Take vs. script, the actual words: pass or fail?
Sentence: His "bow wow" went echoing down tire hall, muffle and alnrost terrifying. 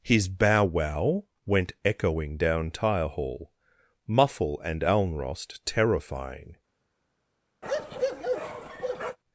pass